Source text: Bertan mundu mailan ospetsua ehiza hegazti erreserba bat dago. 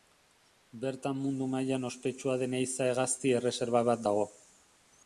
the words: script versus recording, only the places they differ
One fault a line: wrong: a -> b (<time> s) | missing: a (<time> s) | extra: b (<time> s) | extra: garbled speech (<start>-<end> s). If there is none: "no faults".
extra: den (2.5 s)